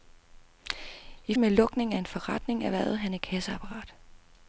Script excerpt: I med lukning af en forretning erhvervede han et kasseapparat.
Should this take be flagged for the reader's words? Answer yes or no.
no